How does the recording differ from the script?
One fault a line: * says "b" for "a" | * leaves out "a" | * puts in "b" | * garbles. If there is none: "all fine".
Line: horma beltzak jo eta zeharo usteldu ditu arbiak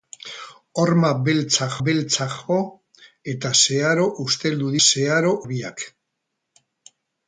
* puts in "beltzak"
* says "zeharo" for "ditu"